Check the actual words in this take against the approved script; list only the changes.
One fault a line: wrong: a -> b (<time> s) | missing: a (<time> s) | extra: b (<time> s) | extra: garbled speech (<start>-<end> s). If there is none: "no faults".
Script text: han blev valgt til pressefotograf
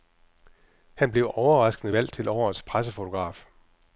extra: overraskende (1.3 s)
extra: årets (2.3 s)